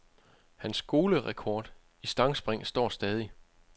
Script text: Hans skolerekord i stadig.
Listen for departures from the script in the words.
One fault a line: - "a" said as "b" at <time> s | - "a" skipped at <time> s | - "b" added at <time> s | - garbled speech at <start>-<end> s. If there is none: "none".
- "stangspring står" added at 2.1 s